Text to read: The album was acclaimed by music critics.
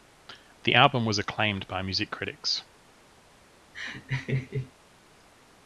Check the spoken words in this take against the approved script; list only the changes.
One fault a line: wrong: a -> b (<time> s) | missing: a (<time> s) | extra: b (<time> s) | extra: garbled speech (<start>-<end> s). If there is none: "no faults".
no faults